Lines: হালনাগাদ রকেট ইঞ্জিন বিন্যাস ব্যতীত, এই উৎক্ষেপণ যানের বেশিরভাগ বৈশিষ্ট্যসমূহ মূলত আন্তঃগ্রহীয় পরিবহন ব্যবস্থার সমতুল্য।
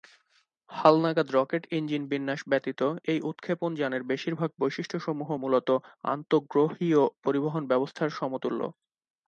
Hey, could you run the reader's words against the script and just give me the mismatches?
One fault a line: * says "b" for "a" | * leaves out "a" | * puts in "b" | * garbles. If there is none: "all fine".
all fine